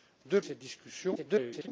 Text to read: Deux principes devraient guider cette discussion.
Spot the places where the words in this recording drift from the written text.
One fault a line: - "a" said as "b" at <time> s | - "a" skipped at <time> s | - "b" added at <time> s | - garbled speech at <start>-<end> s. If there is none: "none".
- "principes devraient guider" skipped at 0.4 s
- garbled speech at 1.1-1.7 s